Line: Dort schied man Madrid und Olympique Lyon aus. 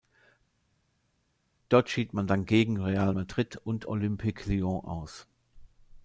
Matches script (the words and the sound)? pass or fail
fail